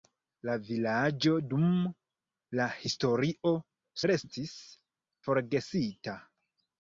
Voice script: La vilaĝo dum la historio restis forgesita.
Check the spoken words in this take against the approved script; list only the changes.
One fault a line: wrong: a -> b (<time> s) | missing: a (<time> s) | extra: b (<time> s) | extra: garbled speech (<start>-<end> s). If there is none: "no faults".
no faults